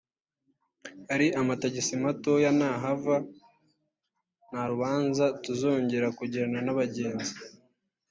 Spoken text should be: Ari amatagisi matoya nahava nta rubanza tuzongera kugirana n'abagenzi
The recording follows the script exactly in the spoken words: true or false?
true